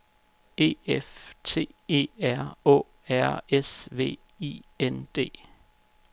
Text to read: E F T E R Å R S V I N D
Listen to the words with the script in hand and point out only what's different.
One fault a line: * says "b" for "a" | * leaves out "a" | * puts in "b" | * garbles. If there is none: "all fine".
all fine